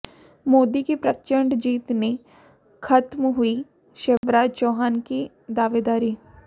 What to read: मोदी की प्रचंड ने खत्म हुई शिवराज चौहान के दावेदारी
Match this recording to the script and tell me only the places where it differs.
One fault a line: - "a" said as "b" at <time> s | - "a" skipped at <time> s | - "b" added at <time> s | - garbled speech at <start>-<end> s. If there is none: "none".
- "जीत" added at 1.6 s
- "के" said as "की" at 5.0 s